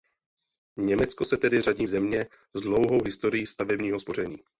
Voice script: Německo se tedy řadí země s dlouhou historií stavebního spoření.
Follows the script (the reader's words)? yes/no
yes